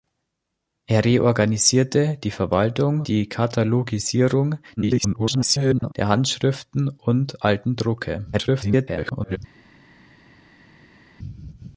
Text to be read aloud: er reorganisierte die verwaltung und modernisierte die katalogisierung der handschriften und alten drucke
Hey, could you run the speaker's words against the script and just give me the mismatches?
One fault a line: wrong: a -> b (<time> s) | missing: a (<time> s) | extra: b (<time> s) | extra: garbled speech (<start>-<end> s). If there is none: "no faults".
missing: und modernisierte (3.0 s)
extra: garbled speech (4.8-5.9 s)
extra: garbled speech (8.3-9.4 s)